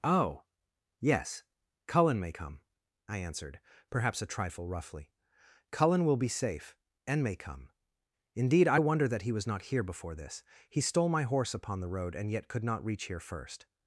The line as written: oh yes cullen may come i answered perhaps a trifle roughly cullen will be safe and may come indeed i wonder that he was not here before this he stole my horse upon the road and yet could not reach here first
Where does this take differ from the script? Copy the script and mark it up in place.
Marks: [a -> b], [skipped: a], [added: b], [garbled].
oh yes cullen may come i answered perhaps a trifle roughly cullen will be safe and may come indeed i wonder that he was not here before this he stole my horse upon the road and yet could not reach here first